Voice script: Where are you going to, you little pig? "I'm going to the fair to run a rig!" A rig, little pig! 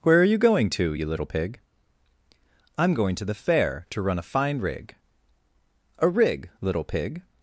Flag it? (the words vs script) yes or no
yes